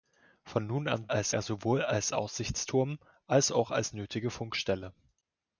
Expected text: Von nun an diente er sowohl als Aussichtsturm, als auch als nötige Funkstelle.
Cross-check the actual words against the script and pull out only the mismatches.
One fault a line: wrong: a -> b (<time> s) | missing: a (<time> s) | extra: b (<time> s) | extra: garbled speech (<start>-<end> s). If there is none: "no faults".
wrong: diente -> als (1.1 s)